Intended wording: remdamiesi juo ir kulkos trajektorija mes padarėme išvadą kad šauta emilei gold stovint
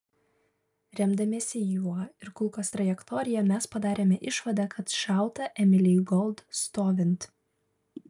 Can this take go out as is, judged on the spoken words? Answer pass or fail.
pass